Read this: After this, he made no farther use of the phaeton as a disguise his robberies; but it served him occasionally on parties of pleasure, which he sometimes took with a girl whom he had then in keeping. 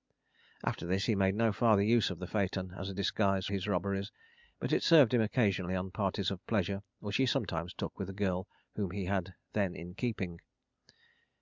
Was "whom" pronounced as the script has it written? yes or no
yes